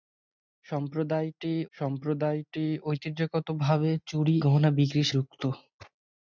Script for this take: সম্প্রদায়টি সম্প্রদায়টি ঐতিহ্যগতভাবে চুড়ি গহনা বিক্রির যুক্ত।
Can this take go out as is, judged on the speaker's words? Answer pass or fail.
pass